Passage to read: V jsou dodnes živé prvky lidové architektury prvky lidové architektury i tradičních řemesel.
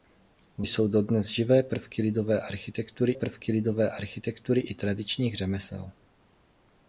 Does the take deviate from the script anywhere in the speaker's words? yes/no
no